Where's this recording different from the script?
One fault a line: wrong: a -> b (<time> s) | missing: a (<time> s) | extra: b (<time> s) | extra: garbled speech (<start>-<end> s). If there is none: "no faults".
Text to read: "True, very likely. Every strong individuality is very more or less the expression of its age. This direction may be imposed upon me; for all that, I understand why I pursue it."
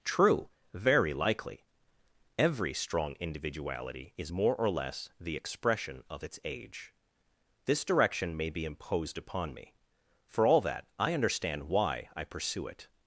missing: very (4.3 s)